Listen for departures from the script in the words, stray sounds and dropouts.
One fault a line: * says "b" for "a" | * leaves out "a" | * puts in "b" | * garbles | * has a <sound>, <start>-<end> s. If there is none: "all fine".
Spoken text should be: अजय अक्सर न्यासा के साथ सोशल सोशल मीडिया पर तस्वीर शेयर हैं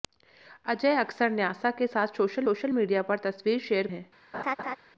* has a laugh, 4.3-4.8 s